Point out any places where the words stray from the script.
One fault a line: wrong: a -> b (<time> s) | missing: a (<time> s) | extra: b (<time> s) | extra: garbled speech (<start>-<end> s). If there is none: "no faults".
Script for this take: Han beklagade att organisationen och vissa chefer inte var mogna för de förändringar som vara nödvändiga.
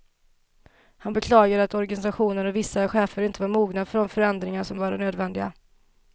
no faults